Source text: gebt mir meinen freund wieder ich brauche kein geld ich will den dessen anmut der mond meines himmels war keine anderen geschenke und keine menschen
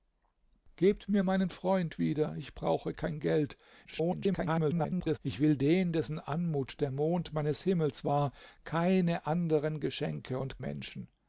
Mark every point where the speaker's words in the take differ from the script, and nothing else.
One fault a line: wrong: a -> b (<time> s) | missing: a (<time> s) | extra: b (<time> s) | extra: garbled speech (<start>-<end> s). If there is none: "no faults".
extra: garbled speech (3.8-5.2 s)
missing: keine (10.6 s)